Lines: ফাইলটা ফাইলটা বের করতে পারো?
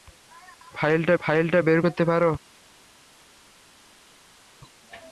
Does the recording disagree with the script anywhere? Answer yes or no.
no